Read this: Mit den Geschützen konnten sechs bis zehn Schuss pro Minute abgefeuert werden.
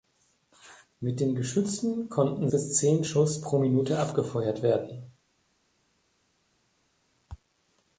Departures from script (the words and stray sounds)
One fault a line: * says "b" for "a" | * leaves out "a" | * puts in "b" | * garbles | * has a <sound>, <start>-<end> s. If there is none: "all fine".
* leaves out "sechs"